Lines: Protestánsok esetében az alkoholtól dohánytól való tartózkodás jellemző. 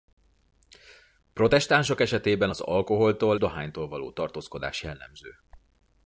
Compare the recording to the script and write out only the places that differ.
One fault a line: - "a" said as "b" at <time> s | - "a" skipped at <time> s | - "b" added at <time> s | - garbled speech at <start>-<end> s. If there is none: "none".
none